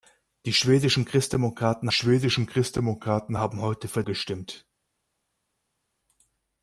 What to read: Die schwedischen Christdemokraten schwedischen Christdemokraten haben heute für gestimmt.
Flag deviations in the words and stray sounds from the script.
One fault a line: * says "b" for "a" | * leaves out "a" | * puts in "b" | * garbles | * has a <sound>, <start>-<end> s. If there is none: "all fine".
all fine